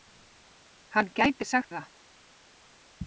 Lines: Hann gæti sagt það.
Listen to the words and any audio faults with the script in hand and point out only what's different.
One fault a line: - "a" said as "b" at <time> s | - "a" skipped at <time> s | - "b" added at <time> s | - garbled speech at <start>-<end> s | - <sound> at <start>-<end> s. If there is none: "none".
none